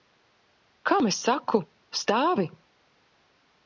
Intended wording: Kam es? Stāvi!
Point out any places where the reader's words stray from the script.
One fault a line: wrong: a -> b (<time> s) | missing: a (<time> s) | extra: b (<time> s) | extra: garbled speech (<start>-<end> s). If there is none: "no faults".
extra: saku (1.3 s)